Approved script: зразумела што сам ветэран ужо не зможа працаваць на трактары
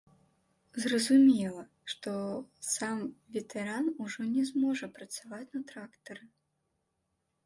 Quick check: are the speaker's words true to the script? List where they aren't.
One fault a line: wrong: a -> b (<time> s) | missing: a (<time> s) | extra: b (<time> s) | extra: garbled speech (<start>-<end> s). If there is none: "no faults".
no faults